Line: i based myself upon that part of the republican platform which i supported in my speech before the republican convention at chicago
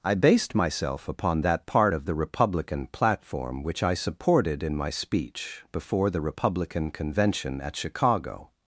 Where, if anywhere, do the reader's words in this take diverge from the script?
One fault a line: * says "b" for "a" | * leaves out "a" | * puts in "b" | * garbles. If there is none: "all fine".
all fine